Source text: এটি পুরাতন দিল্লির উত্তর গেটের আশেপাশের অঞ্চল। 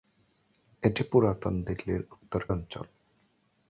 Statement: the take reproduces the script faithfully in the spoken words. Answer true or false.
false